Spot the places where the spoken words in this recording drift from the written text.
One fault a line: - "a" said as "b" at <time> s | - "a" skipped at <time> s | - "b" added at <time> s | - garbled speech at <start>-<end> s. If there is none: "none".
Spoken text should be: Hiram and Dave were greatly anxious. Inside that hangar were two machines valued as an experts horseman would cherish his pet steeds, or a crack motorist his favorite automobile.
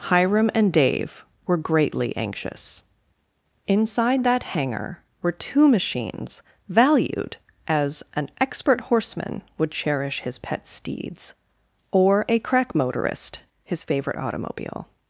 - "experts" said as "expert" at 8.4 s